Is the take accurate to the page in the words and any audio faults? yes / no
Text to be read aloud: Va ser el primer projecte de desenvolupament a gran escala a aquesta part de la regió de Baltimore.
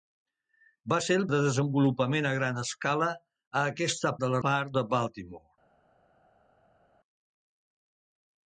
no